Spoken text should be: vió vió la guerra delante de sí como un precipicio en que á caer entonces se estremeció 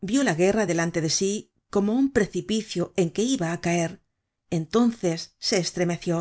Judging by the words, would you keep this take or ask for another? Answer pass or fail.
fail